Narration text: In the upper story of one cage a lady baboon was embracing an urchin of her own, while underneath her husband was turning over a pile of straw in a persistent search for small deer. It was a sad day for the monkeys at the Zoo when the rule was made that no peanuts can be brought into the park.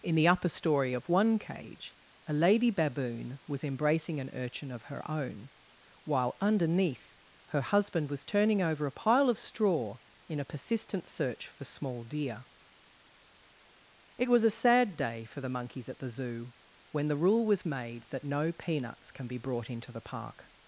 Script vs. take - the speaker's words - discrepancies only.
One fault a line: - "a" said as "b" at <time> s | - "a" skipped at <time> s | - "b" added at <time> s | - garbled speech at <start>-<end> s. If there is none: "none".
none